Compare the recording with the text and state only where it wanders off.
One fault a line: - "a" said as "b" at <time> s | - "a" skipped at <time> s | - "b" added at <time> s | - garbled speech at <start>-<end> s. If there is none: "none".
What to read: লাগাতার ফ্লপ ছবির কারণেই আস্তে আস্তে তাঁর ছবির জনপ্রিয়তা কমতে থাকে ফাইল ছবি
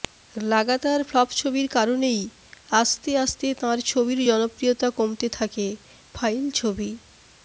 none